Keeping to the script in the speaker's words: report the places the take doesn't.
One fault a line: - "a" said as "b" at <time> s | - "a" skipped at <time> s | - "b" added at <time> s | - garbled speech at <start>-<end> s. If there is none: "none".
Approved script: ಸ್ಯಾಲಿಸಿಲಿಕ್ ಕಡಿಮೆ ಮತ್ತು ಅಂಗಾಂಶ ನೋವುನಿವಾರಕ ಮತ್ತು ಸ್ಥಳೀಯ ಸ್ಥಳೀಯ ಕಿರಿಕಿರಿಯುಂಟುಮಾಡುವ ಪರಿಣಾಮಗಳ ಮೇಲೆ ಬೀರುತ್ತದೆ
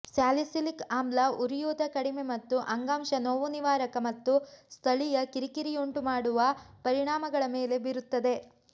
- "ಆಮ್ಲ ಉರಿಯೂತ" added at 0.9 s
- "ಸ್ಥಳೀಯ" skipped at 5.2 s